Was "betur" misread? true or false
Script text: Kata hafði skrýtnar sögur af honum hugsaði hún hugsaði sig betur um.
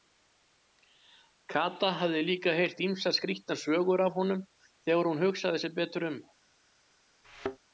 false